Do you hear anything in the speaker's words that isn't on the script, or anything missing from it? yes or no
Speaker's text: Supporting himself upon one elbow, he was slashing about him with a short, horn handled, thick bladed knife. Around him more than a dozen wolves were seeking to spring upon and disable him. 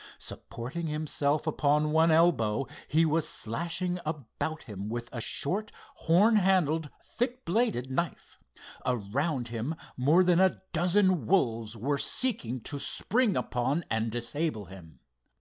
no